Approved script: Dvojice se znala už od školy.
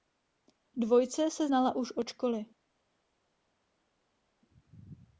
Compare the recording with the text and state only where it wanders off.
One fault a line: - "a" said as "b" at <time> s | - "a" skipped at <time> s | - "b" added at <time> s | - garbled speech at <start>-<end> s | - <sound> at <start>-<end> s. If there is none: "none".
none